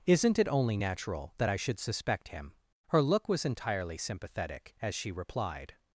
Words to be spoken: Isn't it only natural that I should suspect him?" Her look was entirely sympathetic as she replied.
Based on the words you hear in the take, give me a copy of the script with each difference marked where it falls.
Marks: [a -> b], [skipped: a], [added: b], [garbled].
Isn't it only natural that I should suspect him?" Her look was entirely sympathetic as she replied.